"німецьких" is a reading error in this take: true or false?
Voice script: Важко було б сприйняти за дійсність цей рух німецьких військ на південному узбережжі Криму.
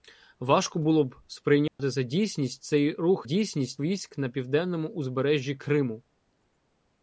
true